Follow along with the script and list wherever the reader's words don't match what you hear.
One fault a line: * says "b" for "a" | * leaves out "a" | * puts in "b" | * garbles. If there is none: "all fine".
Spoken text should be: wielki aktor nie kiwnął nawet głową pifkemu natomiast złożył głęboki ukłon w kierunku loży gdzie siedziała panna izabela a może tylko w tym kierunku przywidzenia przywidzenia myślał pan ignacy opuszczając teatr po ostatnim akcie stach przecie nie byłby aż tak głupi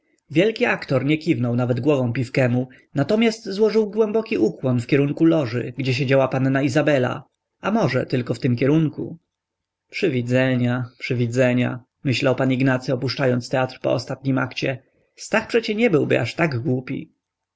all fine